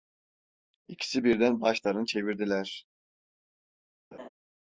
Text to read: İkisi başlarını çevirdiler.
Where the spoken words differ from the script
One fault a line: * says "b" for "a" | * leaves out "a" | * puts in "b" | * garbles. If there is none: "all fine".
* puts in "birden"